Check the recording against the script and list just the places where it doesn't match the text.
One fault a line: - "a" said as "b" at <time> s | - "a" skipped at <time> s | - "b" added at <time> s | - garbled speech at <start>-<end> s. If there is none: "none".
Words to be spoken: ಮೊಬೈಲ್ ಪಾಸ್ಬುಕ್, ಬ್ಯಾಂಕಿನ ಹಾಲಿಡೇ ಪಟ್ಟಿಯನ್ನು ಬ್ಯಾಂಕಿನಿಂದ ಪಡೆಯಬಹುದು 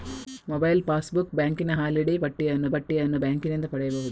- "ಪಟ್ಟಿಯನ್ನು" added at 2.7 s